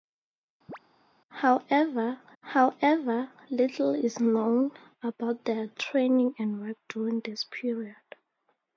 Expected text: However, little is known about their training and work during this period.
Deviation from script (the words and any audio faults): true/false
true